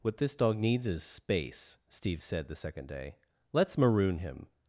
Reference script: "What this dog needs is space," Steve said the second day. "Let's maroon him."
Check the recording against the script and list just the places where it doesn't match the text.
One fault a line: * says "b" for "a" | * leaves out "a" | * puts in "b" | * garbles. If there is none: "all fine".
all fine